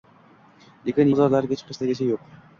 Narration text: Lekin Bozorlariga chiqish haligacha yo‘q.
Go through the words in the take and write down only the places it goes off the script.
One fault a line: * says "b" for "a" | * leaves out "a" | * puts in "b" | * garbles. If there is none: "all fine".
all fine